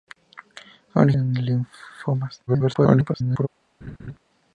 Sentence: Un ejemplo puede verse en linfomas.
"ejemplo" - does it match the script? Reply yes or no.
no